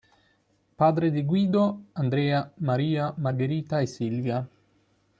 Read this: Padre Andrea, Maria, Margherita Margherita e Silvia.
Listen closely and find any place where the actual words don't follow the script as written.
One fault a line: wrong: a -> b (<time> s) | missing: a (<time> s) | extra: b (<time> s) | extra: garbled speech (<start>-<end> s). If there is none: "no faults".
extra: di Guido (1.1 s)
missing: Margherita (3.8 s)